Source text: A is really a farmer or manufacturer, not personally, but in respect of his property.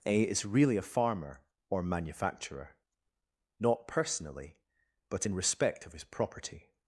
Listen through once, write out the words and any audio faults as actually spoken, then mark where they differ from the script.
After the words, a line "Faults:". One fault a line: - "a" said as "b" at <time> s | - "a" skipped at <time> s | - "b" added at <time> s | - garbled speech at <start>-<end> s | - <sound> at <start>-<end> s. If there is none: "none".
A is really a farmer or manufacturer, not personally, but in respect of his property.
Faults:
none